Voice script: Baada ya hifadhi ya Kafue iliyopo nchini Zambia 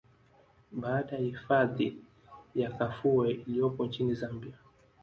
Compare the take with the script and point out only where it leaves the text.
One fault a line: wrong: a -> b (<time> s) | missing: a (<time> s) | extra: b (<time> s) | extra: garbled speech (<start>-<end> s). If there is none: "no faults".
no faults